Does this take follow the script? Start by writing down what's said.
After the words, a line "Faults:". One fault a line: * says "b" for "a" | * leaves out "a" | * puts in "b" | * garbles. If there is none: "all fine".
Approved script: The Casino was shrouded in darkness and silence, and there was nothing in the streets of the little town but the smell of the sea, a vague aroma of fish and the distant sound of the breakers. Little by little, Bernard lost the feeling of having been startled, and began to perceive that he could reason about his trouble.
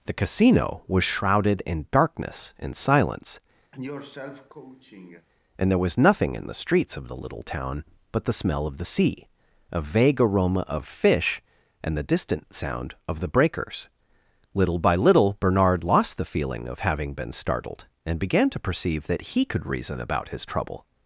The Casino was shrouded in darkness and silence, and there was nothing in the streets of the little town but the smell of the sea, a vague aroma of fish and the distant sound of the breakers. Little by little, Bernard lost the feeling of having been startled, and began to perceive that he could reason about his trouble.
Faults:
all fine